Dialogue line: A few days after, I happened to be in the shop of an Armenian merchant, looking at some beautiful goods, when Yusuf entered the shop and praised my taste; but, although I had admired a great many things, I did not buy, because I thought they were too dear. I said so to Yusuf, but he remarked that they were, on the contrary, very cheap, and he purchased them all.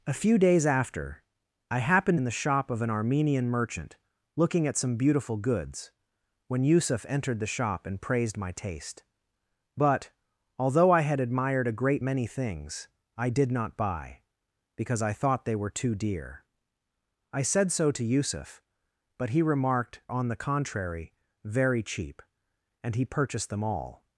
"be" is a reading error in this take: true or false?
true